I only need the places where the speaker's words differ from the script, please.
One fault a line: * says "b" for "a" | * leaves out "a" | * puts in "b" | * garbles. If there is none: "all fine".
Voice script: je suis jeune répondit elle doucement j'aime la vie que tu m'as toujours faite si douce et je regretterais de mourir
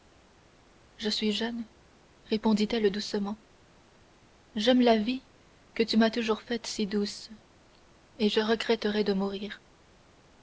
all fine